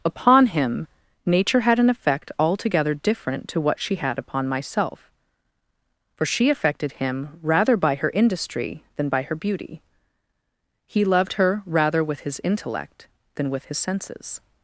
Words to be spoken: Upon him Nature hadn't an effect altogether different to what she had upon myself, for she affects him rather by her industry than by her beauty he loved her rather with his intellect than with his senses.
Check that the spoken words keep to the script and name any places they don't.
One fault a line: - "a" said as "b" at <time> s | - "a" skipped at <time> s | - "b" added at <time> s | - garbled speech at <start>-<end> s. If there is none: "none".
- "hadn't" said as "had" at 1.6 s
- "affects" said as "affected" at 6.5 s